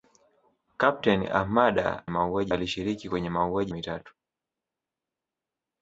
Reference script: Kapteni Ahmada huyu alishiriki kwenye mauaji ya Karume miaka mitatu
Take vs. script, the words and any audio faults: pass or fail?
fail